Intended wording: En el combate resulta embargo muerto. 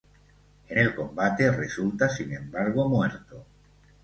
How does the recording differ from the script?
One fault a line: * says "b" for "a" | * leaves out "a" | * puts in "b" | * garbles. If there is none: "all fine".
* puts in "sin"